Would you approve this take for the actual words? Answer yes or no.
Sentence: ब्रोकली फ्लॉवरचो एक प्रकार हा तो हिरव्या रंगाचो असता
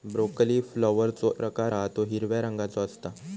no